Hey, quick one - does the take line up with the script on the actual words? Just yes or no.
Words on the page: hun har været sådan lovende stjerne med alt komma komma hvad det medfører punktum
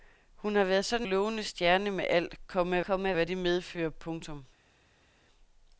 yes